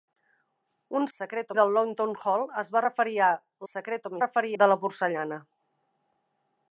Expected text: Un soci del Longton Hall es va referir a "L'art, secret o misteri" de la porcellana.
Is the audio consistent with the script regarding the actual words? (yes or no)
no